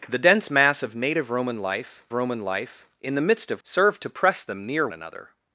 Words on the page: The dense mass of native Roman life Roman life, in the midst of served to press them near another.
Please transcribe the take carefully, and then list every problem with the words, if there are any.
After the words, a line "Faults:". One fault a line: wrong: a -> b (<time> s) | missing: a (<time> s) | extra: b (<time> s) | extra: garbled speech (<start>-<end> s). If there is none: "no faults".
The dense mass of native Roman life Roman life, in the midst of served to press them near another.
Faults:
no faults